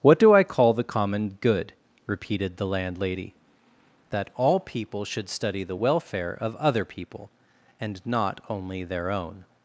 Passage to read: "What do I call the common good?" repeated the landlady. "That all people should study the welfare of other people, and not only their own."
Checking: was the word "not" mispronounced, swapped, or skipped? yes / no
no